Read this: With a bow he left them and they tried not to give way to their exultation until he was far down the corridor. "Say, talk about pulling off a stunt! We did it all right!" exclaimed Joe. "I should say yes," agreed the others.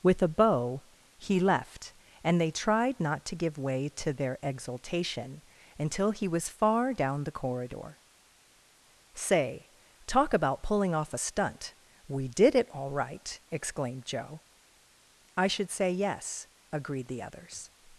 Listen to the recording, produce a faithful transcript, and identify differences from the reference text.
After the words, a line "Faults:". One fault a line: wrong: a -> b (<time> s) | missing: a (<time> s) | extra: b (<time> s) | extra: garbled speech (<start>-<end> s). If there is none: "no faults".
With a bow he left and they tried not to give way to their exultation until he was far down the corridor. "Say, talk about pulling off a stunt! We did it all right!" exclaimed Joe. "I should say yes," agreed the others.
Faults:
missing: them (1.9 s)